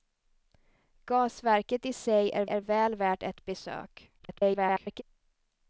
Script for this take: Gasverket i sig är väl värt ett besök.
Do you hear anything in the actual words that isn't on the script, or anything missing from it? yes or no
yes